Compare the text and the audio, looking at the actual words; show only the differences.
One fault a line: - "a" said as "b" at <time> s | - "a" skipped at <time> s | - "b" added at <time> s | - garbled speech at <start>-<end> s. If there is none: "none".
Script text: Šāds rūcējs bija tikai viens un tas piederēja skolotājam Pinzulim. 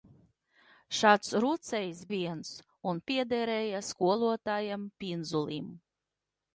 - "bija tikai" skipped at 2.0 s
- "tas" skipped at 3.0 s